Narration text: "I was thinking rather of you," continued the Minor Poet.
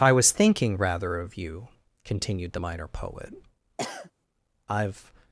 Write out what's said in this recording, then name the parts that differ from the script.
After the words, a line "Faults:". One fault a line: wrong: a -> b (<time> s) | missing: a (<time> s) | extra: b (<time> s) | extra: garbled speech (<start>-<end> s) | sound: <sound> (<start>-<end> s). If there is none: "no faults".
"I was thinking rather of you," continued the Minor Poet. "I've
Faults:
sound: sniff (3.8-4.1 s)
extra: I've (4.7 s)